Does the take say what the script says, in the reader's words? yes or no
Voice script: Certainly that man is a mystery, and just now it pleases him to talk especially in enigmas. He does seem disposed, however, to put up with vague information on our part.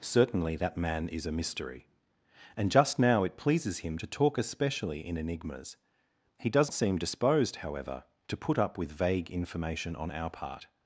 yes